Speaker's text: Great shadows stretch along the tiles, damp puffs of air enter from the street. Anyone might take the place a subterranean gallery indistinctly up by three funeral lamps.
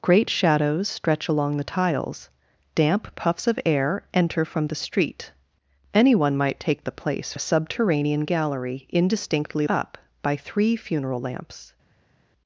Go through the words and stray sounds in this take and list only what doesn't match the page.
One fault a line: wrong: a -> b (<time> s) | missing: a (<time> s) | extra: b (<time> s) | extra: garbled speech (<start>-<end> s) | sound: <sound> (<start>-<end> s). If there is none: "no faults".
no faults